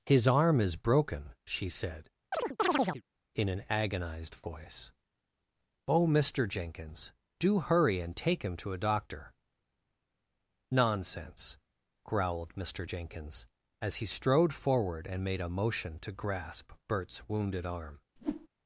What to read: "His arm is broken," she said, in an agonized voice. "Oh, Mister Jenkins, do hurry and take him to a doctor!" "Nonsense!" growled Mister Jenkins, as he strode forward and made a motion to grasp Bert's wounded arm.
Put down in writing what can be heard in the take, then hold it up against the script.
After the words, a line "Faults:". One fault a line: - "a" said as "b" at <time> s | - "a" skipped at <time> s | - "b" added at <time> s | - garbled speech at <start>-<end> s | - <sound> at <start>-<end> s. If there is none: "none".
"His arm is broken," she said, in an agonized voice. "Oh, Mister Jenkins, do hurry and take him to a doctor!" "Nonsense!" growled Mister Jenkins, as he strode forward and made a motion to grasp Bert's wounded arm.
Faults:
- chirp at 2.3-3.0 s
- whoosh at 18.2-18.5 s